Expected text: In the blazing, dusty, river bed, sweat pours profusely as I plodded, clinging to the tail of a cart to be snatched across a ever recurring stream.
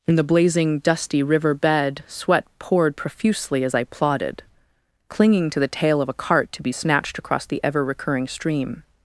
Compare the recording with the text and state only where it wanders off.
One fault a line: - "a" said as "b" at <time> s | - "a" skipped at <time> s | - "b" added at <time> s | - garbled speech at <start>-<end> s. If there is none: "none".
- "pours" said as "poured" at 2.6 s
- "a" said as "the" at 7.5 s